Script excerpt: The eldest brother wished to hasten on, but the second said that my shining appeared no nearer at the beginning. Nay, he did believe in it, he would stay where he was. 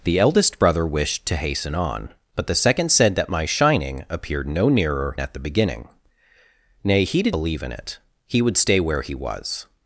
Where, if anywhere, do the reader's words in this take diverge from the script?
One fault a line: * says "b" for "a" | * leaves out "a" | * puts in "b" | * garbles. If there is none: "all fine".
all fine